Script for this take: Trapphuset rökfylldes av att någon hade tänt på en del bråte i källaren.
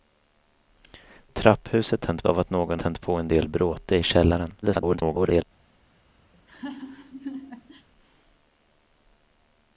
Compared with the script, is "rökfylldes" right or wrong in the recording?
wrong